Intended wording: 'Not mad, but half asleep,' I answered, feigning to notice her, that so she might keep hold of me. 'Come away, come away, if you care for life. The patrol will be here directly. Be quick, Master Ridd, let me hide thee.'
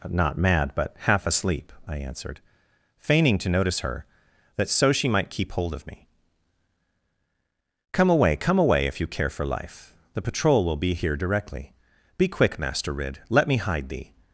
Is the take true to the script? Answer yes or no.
yes